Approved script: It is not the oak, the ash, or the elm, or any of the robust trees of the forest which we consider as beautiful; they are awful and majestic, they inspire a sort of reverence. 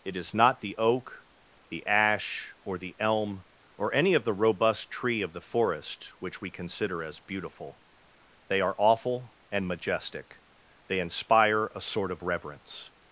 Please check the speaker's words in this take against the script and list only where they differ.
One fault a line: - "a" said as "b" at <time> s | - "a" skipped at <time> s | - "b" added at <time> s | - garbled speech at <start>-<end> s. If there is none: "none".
- "trees" said as "tree" at 4.9 s